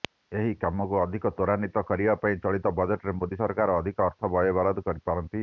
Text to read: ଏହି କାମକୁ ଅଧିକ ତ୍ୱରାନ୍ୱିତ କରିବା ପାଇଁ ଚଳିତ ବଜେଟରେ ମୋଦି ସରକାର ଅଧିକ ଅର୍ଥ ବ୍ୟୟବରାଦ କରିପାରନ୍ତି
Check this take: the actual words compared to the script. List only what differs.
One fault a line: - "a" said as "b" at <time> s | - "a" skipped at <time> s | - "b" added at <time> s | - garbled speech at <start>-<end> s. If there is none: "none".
none